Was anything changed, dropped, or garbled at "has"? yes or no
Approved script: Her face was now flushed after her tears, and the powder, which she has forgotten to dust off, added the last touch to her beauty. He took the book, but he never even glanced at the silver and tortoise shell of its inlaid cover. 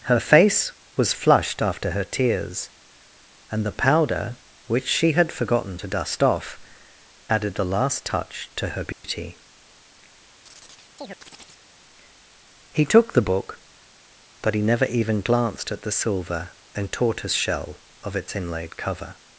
yes